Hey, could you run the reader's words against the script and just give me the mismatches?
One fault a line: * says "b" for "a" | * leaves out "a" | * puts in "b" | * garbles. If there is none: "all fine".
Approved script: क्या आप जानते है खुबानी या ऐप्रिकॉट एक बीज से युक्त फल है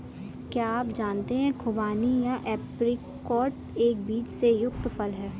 all fine